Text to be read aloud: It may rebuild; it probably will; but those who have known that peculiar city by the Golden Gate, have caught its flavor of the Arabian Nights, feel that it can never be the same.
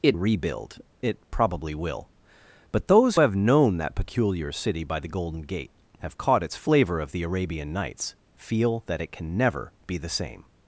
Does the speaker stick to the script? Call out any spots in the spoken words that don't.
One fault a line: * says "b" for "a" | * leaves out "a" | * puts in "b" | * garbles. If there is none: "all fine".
* leaves out "may"
* leaves out "who"